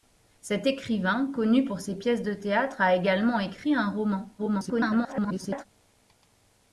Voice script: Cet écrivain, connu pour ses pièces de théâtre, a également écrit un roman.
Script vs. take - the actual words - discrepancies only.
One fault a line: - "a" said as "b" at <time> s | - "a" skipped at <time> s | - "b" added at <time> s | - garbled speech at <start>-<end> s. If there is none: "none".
- garbled speech at 4.4-5.7 s